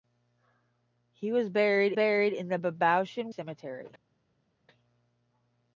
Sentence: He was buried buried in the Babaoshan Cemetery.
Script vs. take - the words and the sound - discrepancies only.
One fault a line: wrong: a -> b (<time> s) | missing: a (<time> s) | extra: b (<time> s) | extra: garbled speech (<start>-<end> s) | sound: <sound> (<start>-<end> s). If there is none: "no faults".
no faults